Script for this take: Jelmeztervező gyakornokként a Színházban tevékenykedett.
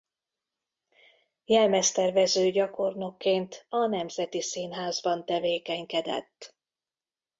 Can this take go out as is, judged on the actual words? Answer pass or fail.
fail